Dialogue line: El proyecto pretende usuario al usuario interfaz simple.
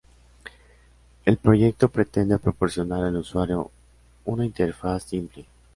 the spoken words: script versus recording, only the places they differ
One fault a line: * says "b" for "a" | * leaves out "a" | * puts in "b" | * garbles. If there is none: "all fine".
* says "proporcionar" for "usuario"
* puts in "una"